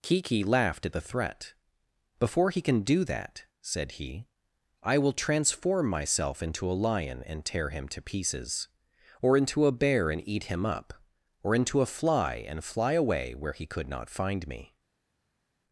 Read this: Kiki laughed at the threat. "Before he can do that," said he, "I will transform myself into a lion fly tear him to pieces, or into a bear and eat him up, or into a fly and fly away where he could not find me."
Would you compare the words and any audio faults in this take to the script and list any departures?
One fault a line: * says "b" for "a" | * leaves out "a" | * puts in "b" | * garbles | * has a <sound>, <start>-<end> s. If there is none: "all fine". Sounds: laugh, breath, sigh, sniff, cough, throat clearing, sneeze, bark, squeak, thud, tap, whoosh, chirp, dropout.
* says "and" for "fly"